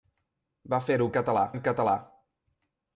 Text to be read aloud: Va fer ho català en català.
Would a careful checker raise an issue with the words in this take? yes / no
no